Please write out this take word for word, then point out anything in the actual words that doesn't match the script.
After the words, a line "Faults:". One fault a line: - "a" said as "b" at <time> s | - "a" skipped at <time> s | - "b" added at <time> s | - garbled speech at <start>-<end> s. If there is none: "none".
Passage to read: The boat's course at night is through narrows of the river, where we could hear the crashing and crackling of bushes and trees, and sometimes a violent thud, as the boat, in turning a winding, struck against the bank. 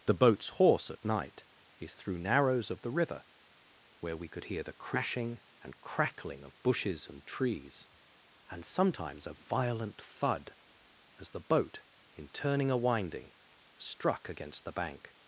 The boat's horse at night is through narrows of the river, where we could hear the crashing and crackling of bushes and trees, and sometimes a violent thud, as the boat, in turning a winding, struck against the bank.
Faults:
- "course" said as "horse" at 0.5 s